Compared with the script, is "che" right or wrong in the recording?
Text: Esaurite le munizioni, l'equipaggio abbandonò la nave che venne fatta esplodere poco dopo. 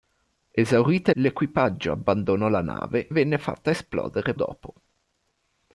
wrong